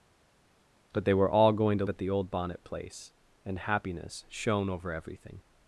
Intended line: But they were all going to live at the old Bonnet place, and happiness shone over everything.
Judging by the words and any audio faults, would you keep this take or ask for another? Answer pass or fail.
fail